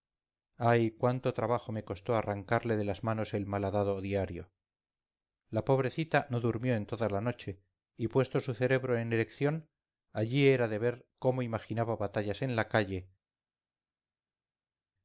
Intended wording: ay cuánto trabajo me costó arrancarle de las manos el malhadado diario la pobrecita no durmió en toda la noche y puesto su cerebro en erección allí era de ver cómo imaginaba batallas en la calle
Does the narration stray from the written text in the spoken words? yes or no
no